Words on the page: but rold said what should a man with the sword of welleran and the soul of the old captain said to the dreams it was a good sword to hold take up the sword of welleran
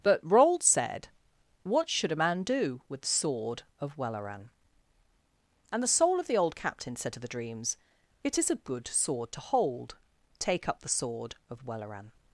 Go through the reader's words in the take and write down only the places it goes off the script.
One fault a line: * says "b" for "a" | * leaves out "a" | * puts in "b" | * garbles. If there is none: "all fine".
* puts in "do"
* says "is" for "was"